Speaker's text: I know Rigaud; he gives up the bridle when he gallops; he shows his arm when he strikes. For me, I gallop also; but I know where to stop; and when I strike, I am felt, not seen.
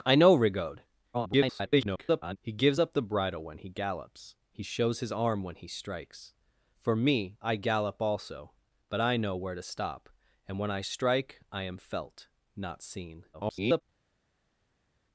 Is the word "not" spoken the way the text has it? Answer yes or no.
yes